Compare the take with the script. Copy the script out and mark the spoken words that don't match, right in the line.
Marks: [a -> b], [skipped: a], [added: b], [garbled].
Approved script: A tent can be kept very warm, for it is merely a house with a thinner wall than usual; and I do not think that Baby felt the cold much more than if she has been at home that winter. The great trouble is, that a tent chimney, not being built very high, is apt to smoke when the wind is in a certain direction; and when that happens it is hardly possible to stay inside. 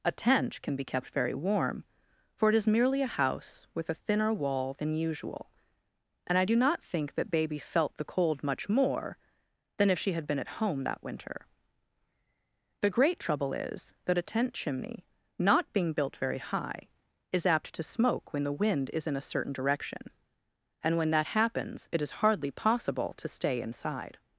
A tent can be kept very warm, for it is merely a house with a thinner wall than usual; and I do not think that Baby felt the cold much more than if she [has -> had] been at home that winter. The great trouble is, that a tent chimney, not being built very high, is apt to smoke when the wind is in a certain direction; and when that happens it is hardly possible to stay inside.